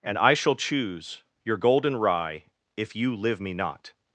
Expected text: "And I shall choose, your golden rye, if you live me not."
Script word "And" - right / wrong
right